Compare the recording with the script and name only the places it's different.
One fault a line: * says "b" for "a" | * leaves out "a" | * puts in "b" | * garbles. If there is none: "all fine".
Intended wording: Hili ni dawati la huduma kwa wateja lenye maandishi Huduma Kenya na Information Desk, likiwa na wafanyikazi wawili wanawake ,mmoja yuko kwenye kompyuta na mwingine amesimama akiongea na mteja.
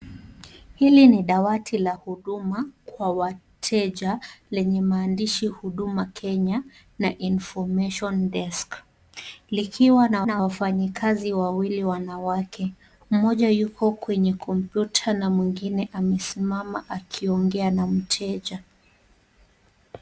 * puts in "na"